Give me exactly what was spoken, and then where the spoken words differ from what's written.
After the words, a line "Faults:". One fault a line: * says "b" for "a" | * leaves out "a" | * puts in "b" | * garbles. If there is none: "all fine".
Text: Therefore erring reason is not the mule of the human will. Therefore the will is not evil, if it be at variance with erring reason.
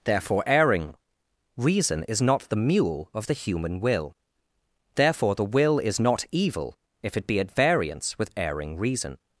Therefore erring reason is not the mule of the human will. Therefore the will is not evil, if it be at variance with erring reason.
Faults:
all fine